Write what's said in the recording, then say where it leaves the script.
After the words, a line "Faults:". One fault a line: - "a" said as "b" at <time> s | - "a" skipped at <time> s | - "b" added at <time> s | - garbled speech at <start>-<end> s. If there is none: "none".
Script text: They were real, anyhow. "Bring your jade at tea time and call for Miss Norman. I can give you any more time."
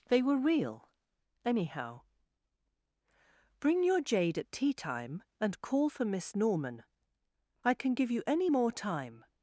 They were real, anyhow. "Bring your jade at tea time and call for Miss Norman. I can give you any more time."
Faults:
none